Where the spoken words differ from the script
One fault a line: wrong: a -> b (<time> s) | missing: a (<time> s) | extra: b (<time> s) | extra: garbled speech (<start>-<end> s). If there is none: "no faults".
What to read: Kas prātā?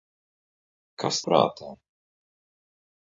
no faults